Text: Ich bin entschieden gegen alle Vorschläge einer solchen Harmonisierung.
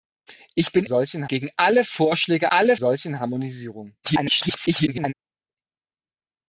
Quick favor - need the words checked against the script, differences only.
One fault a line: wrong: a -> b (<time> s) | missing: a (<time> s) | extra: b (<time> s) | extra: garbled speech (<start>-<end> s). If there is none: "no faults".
wrong: entschieden -> solchen (0.8 s)
wrong: einer -> alle (2.5 s)
extra: garbled speech (4.0-5.1 s)